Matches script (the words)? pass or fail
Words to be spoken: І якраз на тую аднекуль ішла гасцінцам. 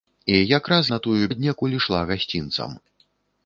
pass